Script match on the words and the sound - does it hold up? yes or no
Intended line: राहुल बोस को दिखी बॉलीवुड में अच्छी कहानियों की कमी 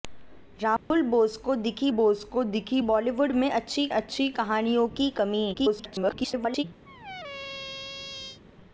no